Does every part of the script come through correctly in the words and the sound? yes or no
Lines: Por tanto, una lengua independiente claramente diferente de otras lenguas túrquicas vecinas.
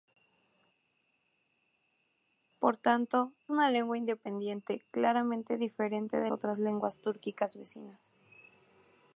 yes